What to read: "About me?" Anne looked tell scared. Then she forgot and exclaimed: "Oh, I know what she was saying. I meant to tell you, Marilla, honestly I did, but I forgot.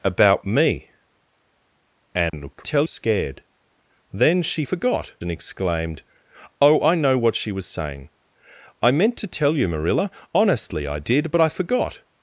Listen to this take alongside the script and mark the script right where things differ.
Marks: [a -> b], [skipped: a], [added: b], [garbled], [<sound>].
"About me?" Anne [dropout] looked tell scared. Then she forgot and exclaimed: "Oh, I know what she was saying. I meant to tell you, Marilla, honestly I did, but I forgot.